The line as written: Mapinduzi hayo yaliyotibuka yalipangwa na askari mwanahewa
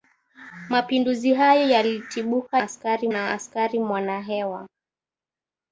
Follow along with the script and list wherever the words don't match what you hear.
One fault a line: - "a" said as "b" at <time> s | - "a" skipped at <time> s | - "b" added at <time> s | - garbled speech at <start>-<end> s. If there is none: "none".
- "yalipangwa" said as "askari" at 2.6 s